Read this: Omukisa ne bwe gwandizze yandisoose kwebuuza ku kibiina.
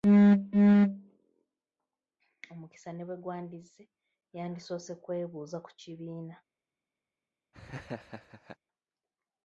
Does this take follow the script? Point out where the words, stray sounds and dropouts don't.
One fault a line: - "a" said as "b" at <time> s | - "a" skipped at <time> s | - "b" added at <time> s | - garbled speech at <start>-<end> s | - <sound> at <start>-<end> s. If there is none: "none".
- laugh at 7.5-8.6 s